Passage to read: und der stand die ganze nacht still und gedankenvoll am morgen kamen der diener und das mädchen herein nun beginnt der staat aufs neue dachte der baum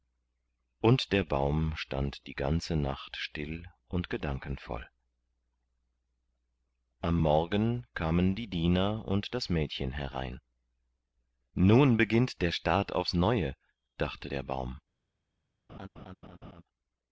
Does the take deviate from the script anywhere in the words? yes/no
yes